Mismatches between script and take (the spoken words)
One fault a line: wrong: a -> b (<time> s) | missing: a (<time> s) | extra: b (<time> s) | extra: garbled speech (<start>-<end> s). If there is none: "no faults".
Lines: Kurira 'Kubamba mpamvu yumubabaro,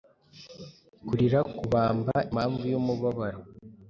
no faults